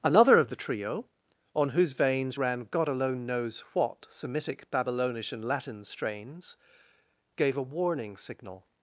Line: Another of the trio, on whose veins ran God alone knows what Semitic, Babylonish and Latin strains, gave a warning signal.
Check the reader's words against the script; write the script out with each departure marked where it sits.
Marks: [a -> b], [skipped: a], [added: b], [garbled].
Another of the trio, on whose veins ran God alone knows what Semitic, Babylonish and Latin strains, gave a warning signal.